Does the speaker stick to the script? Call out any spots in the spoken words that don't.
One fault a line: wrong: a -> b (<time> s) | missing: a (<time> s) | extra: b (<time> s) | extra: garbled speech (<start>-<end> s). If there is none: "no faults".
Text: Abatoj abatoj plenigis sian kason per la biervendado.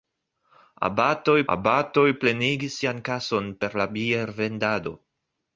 no faults